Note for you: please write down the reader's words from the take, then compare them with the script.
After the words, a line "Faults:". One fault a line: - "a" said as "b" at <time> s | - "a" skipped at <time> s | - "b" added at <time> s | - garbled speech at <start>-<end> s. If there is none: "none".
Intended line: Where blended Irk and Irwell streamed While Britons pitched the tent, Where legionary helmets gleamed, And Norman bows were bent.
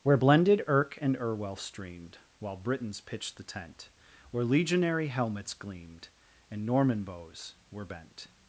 Where blended Irk and Irwell streamed While Britons pitched the tent, Where legionary helmets gleamed, And Norman bows were bent.
Faults:
none